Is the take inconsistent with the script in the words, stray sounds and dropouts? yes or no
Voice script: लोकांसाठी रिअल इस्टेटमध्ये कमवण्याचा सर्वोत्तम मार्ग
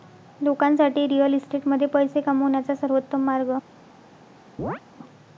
yes